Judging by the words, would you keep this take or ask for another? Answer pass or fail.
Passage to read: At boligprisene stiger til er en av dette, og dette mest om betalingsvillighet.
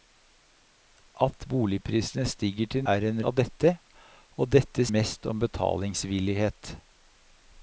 pass